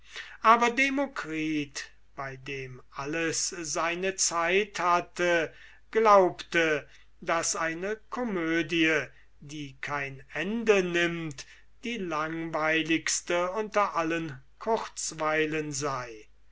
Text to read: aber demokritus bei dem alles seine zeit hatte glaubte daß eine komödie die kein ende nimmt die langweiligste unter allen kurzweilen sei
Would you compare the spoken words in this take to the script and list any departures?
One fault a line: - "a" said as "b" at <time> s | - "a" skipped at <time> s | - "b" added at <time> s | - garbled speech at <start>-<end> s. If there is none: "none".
none